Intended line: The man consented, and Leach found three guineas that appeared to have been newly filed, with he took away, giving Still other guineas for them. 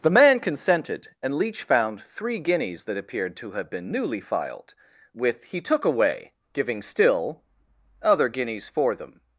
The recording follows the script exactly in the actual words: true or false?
true